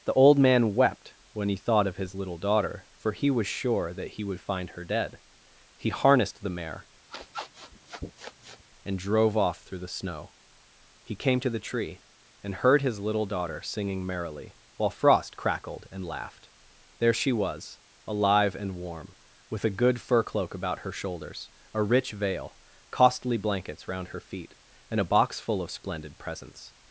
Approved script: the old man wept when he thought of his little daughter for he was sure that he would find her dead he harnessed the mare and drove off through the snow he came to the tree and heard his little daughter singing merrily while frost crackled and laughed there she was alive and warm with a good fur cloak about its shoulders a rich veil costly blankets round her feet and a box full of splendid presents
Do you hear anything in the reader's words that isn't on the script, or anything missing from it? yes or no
yes